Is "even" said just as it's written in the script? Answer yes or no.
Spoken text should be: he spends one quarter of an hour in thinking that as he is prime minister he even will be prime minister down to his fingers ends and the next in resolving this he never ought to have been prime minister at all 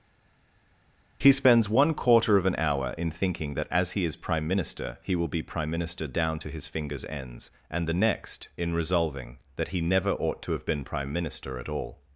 no